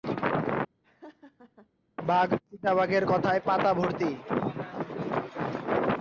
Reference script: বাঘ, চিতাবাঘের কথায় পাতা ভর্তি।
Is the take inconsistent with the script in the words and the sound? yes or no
yes